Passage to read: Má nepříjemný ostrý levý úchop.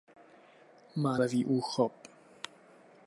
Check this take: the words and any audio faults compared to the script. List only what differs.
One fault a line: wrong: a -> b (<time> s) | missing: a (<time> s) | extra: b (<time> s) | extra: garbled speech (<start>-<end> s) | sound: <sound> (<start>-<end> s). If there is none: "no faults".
missing: nepříjemný ostrý (1.2 s)